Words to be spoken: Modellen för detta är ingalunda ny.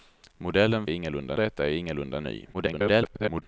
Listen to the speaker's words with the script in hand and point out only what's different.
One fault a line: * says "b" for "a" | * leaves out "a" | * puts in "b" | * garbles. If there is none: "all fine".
* says "ingalunda" for "för"
* garbles